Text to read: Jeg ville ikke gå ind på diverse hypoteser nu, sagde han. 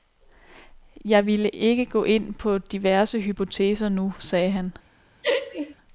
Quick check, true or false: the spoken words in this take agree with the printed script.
true